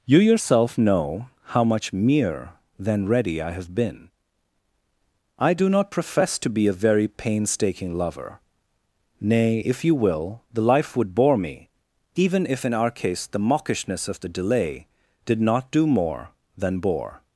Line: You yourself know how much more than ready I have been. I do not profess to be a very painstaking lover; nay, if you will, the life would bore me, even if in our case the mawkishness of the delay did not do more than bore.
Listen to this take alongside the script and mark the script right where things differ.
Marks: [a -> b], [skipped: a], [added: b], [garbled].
You yourself know how much [more -> mere] than ready I have been. I do not profess to be a very painstaking lover; nay, if you will, the life would bore me, even if in our case the mawkishness of the delay did not do more than bore.